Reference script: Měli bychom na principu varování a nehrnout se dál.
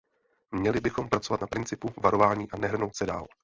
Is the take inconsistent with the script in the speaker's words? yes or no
yes